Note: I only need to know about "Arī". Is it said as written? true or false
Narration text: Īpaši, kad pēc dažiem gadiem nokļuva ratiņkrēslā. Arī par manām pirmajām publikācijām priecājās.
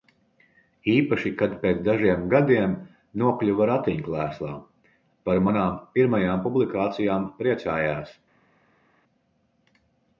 false